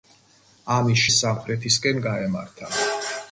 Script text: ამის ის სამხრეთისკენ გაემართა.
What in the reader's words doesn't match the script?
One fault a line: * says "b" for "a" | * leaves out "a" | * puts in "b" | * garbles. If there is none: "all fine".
all fine